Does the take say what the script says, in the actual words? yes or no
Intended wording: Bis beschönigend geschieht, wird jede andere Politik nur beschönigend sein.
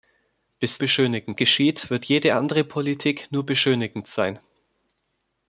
yes